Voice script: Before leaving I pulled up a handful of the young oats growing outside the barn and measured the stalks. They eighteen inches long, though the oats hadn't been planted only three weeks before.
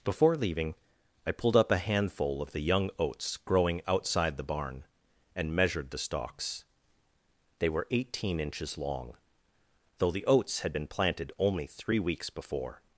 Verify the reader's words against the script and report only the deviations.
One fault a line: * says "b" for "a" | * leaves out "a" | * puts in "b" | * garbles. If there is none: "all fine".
* puts in "were"
* says "had" for "hadn't"